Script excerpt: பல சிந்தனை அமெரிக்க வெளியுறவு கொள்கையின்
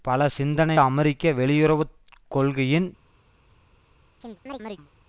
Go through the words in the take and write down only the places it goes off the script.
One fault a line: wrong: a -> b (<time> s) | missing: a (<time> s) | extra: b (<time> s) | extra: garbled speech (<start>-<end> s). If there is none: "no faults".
no faults